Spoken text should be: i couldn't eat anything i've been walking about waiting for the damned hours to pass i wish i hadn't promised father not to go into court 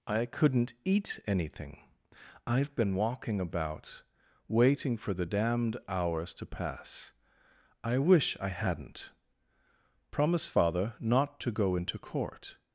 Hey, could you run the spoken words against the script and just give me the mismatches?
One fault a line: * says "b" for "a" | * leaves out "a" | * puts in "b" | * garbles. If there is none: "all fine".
* says "promise" for "promised"